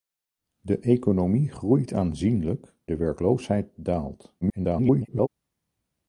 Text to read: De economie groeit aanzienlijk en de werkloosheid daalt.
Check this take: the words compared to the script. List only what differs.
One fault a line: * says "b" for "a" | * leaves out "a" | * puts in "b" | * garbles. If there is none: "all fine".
* leaves out "en"
* garbles